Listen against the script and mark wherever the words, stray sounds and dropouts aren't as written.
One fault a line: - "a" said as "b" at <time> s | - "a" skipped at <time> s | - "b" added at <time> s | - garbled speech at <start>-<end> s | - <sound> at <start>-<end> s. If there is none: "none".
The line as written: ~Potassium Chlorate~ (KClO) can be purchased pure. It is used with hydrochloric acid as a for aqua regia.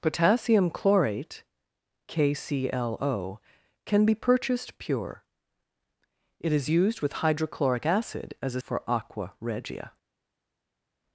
none